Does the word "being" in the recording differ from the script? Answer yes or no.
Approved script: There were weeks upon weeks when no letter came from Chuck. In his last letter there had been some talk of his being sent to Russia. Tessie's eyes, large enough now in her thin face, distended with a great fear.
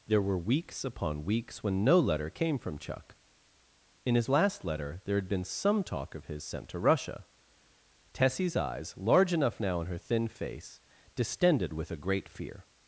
yes